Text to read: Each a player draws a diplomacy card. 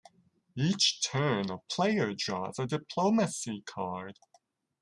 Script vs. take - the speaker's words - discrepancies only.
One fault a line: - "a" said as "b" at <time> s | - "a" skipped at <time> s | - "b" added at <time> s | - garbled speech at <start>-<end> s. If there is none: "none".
- "turn" added at 1.1 s